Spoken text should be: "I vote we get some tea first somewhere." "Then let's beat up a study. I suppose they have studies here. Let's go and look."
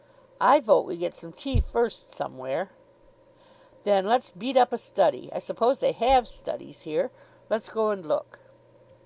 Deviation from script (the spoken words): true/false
false